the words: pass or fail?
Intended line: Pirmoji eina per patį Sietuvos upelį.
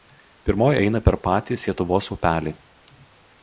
pass